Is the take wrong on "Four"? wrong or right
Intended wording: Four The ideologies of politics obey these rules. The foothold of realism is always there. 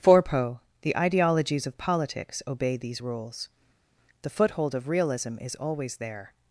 wrong